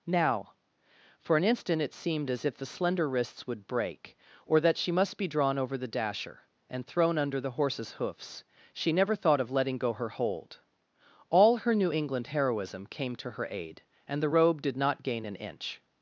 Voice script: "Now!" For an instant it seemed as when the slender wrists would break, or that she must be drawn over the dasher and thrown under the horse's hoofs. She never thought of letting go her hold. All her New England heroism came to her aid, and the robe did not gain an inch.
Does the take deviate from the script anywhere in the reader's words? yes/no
yes